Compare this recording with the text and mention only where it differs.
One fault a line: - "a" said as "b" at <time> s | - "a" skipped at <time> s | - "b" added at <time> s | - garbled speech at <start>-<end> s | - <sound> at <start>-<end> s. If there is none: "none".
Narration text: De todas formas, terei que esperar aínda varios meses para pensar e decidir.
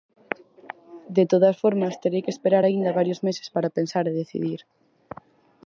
none